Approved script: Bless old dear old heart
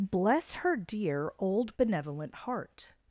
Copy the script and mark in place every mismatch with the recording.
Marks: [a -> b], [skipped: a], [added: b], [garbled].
Bless [old -> her] dear old [added: benevolent] heart